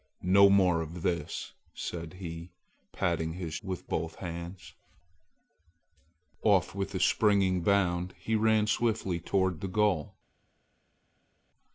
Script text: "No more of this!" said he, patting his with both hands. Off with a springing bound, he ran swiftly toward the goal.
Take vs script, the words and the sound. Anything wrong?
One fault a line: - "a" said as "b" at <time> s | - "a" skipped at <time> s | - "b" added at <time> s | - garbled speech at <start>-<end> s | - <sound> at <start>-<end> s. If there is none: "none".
none